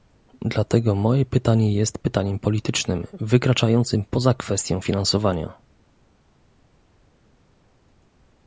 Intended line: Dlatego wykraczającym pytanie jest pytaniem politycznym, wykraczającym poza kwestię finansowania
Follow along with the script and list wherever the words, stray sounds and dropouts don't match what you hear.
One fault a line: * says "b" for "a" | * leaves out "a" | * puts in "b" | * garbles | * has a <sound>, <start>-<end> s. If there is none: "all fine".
* says "moje" for "wykraczającym"